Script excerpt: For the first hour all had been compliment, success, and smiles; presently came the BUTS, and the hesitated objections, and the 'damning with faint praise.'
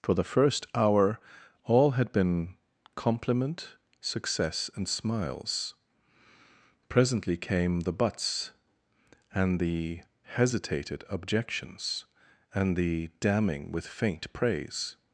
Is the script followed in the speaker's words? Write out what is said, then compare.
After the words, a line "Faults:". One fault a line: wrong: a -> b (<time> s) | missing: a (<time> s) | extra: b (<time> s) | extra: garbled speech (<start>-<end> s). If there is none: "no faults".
For the first hour all had been compliment, success, and smiles; presently came the BUTS, and the hesitated objections, and the 'damning with faint praise.'
Faults:
no faults